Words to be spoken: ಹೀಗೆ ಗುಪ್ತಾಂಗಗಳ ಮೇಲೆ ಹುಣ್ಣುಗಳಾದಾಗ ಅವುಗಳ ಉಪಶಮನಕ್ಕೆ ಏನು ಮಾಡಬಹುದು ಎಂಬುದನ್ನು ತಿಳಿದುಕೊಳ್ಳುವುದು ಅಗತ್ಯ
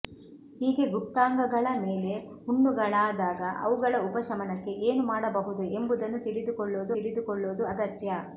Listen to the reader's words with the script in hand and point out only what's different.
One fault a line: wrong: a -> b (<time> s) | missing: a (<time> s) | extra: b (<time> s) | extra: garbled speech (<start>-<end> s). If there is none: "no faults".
extra: ತಿಳಿದುಕೊಳ್ಳುವುದು (6.9 s)